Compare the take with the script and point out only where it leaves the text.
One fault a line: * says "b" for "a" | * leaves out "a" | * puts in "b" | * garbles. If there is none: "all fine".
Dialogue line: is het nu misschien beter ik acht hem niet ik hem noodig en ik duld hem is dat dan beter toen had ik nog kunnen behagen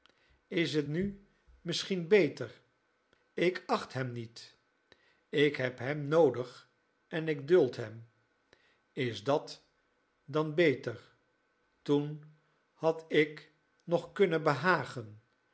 * puts in "heb"